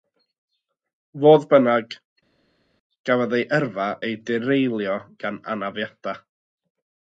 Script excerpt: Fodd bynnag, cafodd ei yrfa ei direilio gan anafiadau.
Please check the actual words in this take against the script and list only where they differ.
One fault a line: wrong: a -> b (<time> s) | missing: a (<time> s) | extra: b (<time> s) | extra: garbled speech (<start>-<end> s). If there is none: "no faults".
no faults